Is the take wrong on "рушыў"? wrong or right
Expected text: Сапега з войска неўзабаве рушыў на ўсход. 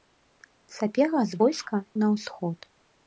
wrong